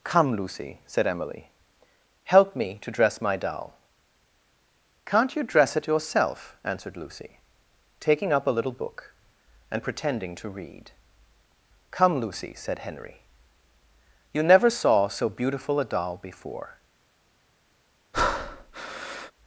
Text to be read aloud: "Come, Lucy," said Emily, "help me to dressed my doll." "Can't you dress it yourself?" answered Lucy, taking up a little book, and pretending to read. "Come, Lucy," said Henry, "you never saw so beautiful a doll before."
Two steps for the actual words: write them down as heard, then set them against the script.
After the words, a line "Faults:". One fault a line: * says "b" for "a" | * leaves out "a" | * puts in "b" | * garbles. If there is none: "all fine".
"Come, Lucy," said Emily, "help me to dress my doll." "Can't you dress it yourself?" answered Lucy, taking up a little book, and pretending to read. "Come, Lucy," said Henry, "you never saw so beautiful a doll before."
Faults:
* says "dress" for "dressed"